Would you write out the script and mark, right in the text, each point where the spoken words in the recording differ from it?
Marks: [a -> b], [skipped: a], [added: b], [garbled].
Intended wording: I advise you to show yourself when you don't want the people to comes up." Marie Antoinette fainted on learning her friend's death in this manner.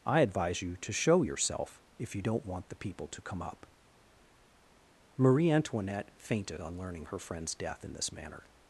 I advise you to show yourself [when -> if] you don't want the people to [comes -> come] up." Marie Antoinette fainted on learning her friend's death in this manner.